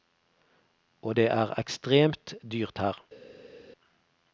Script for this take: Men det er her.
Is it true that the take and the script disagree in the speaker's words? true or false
true